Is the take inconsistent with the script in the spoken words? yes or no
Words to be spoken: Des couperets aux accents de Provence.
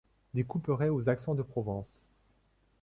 no